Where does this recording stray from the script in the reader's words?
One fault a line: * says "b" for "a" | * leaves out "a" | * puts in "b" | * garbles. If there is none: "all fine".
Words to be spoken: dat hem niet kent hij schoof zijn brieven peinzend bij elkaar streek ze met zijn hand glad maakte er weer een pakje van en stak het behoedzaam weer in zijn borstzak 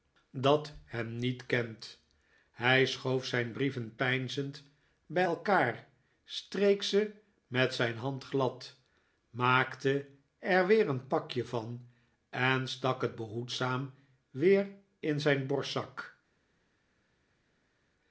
all fine